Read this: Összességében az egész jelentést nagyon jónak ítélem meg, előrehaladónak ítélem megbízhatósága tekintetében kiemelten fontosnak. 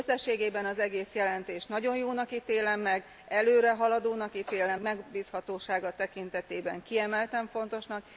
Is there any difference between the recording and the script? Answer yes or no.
no